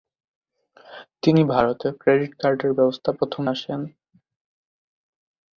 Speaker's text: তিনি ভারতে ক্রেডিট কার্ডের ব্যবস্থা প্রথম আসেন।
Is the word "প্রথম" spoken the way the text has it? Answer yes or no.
yes